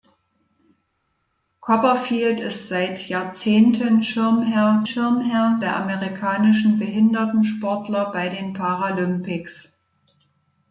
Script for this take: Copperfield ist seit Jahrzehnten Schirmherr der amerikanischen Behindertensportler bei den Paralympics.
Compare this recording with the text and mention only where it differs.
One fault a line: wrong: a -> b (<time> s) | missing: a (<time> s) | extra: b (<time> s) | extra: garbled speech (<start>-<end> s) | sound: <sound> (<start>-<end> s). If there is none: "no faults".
extra: Schirmherr (4.8 s)